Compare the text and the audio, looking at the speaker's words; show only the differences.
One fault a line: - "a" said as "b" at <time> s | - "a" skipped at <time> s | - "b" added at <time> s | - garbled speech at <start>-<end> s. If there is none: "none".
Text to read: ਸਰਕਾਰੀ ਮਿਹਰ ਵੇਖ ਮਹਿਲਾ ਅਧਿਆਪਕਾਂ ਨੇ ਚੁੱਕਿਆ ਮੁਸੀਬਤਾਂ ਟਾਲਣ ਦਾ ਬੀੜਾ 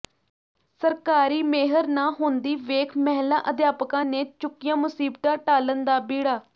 - "ਨਾ ਹੁੰਦੀ" added at 1.9 s